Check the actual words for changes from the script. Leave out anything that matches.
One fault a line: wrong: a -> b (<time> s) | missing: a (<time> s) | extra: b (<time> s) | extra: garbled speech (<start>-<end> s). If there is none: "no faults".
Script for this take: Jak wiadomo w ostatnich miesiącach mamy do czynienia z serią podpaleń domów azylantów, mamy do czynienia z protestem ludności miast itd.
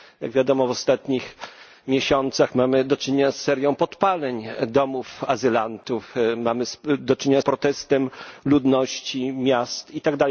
missing: z (7.4 s)